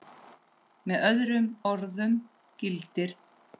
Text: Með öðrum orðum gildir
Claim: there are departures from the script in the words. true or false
false